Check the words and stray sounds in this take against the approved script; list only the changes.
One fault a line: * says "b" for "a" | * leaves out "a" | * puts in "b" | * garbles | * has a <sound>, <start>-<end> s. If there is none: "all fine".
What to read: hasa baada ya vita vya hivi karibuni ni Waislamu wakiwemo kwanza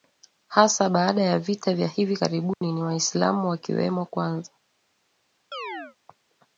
* has a dropout, 2.5-2.6 s
* has a chirp, 5.5-6.0 s